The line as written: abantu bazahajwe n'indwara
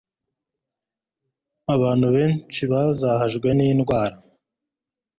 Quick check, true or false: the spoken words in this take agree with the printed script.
false